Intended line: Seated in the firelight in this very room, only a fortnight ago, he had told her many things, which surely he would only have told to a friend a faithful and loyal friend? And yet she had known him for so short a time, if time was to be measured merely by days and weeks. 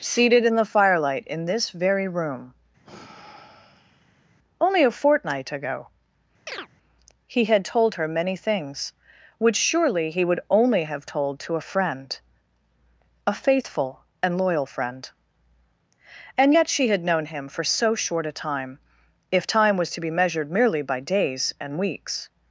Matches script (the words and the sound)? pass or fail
fail